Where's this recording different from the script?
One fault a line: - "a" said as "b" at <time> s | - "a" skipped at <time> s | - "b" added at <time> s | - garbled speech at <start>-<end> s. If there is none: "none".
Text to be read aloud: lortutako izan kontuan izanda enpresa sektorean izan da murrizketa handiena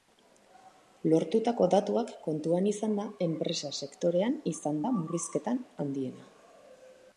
- "izan" said as "datuak" at 1.7 s